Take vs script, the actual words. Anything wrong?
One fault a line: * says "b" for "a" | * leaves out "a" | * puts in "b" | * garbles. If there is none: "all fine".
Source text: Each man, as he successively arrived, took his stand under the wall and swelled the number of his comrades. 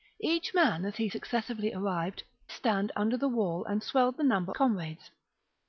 * leaves out "took his"
* leaves out "of his"